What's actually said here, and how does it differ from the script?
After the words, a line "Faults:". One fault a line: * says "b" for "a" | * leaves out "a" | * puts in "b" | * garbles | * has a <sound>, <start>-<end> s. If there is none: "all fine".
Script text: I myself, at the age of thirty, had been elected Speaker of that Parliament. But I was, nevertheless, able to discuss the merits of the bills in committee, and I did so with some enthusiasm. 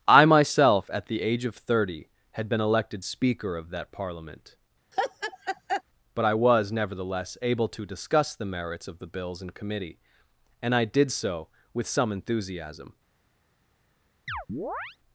I myself, at the age of thirty, had been elected Speaker of that Parliament. But I was, nevertheless, able to discuss the merits of the bills in committee, and I did so with some enthusiasm.
Faults:
* has a laugh, 4.9-5.8 s
* has a chirp, 14.3-15.0 s